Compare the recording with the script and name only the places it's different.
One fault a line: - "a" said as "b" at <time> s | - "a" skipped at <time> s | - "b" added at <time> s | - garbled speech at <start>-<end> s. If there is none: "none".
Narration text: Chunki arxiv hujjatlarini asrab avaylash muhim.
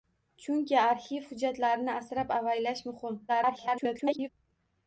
- garbled speech at 3.3-4.3 s